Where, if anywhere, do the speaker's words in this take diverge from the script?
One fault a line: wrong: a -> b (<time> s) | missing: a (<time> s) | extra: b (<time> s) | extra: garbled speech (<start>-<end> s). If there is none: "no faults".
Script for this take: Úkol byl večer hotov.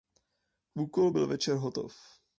no faults